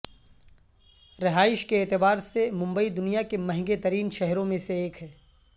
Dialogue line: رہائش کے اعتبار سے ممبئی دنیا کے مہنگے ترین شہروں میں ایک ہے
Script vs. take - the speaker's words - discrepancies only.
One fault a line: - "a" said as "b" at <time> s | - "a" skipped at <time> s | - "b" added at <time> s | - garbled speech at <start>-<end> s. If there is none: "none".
- "سے" added at 4.6 s